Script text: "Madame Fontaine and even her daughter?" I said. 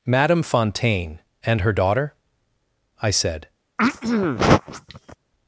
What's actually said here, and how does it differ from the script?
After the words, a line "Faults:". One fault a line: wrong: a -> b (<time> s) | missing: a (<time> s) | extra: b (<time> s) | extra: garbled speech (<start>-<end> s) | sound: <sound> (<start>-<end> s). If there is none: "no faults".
"Madame Fontaine and her daughter?" I said.
Faults:
missing: even (1.6 s)
sound: throat clearing (3.8-5.2 s)